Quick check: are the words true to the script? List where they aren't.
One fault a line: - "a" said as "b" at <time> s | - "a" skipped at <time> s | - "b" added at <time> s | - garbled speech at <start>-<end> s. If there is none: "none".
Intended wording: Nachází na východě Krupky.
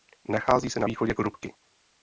- "se" added at 0.7 s